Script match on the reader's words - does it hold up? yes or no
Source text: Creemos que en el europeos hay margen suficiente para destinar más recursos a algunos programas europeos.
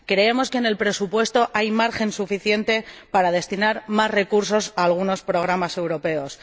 no